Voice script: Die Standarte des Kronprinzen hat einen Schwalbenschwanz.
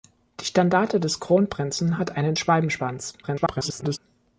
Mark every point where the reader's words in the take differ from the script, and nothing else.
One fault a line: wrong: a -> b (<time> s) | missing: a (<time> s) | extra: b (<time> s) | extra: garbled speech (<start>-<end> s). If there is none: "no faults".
extra: garbled speech (3.2-4.0 s)